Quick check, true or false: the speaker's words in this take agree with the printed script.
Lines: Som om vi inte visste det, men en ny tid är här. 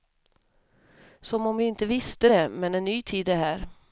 true